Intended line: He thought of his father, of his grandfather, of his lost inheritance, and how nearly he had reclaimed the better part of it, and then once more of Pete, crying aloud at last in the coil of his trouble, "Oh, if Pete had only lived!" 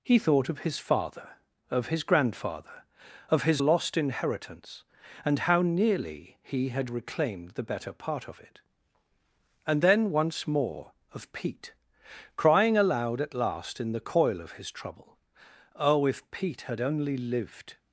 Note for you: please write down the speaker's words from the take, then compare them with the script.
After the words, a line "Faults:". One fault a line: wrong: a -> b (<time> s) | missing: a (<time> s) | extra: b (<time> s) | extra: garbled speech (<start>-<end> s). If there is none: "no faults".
He thought of his father, of his grandfather, of his lost inheritance, and how nearly he had reclaimed the better part of it, and then once more of Pete, crying aloud at last in the coil of his trouble, "Oh, if Pete had only lived!"
Faults:
no faults